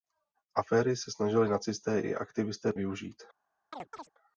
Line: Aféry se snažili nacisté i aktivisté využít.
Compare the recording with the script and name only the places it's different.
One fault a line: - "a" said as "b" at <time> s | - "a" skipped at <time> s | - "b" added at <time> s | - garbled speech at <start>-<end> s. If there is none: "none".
none